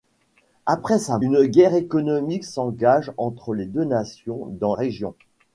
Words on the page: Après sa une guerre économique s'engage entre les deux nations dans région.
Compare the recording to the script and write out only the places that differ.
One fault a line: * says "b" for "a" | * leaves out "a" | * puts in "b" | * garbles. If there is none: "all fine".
all fine